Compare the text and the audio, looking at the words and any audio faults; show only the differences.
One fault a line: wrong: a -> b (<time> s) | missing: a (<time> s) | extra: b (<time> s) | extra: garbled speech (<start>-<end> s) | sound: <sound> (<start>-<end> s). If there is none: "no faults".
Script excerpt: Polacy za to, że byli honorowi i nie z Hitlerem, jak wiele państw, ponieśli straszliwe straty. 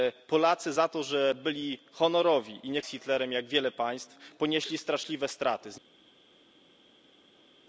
no faults